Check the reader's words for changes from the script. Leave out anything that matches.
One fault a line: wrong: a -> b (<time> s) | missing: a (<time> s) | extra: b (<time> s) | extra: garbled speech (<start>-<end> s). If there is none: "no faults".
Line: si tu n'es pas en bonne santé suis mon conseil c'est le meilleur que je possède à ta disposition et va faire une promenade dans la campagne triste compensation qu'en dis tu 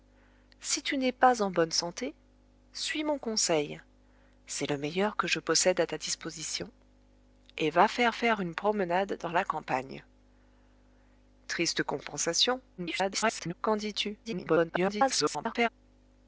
extra: faire (8.1 s)
extra: garbled speech (12.8-13.5 s)
extra: garbled speech (14.2-15.7 s)